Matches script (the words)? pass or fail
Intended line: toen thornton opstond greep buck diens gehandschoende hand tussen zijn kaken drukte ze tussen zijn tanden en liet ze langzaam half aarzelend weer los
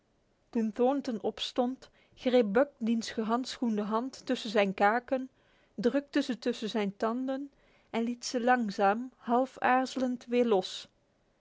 pass